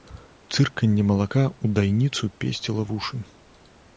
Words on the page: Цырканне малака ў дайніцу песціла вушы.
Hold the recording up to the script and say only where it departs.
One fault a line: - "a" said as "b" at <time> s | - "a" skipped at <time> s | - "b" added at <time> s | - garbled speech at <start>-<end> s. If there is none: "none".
none